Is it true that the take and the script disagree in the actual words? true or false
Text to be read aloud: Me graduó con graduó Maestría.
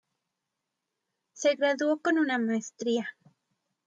true